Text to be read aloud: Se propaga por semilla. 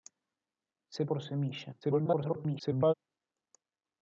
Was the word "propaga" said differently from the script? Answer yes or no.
yes